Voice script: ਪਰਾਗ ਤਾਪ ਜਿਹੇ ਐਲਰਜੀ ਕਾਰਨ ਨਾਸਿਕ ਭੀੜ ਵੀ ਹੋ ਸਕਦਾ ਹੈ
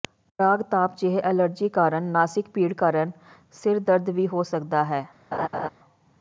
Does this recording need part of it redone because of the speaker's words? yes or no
yes